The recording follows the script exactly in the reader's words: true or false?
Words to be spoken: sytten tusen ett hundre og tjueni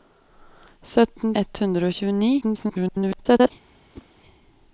false